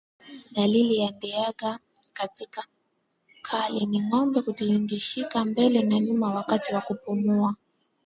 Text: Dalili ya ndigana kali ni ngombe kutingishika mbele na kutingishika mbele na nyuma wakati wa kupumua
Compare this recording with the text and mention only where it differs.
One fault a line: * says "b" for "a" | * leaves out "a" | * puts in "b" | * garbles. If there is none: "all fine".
* leaves out "kutingishika mbele na"